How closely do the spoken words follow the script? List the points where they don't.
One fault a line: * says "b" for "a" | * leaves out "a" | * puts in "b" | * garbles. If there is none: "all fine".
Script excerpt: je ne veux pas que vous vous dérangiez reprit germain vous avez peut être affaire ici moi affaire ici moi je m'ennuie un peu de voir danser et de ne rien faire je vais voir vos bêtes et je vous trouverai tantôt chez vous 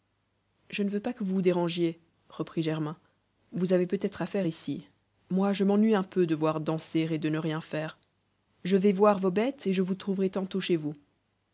* leaves out "affaire ici moi"